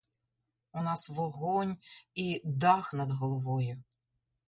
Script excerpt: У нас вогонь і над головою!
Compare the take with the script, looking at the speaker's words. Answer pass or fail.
fail